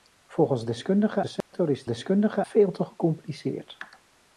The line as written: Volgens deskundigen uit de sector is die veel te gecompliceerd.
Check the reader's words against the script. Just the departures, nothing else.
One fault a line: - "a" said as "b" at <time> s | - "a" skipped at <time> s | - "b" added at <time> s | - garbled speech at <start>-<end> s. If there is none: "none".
- "uit" skipped at 1.2 s
- "die" said as "deskundigen" at 1.9 s